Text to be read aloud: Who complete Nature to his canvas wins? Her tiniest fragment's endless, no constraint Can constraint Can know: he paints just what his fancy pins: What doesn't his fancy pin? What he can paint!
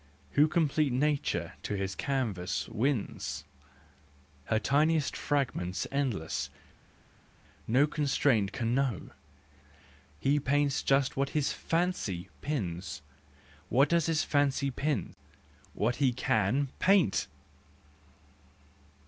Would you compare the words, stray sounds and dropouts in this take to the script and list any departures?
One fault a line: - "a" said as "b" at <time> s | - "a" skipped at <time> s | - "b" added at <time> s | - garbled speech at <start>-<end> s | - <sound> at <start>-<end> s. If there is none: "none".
- "constraint Can" skipped at 8.8 s
- "doesn't" said as "does" at 13.9 s